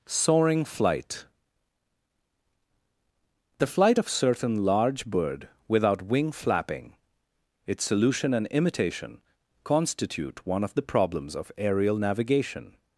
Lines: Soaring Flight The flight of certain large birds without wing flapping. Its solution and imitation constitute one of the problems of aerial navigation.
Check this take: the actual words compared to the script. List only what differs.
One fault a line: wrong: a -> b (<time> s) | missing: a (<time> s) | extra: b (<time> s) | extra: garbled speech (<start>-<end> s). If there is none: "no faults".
wrong: birds -> bird (5.0 s)